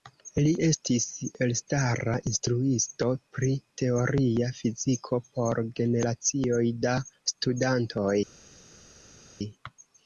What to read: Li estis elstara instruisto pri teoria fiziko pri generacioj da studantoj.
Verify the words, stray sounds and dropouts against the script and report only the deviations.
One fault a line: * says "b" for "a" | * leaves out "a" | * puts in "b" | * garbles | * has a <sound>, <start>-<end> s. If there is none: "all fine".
* says "por" for "pri"